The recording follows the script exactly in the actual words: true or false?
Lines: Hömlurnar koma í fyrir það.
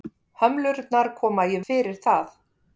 true